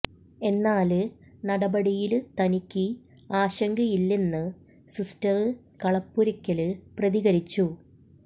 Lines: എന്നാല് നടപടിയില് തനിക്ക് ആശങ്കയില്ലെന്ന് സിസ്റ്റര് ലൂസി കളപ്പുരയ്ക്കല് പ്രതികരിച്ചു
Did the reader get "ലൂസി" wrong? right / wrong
wrong